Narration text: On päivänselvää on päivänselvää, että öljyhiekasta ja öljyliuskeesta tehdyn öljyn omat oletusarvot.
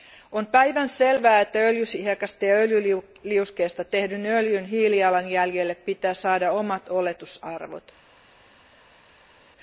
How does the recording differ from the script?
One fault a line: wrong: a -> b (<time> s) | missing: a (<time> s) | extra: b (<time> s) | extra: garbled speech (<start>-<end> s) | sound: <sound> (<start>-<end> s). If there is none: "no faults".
missing: on päivänselvää (1.4 s)
extra: hiilijalanjäljelle pitää saada (4.7 s)